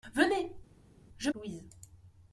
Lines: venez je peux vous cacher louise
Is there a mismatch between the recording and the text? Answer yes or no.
yes